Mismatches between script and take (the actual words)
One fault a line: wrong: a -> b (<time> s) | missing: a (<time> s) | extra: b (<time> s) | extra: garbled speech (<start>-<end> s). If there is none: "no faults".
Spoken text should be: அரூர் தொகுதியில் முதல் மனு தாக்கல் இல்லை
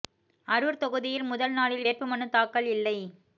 extra: நாளில் வேட்பு (1.5 s)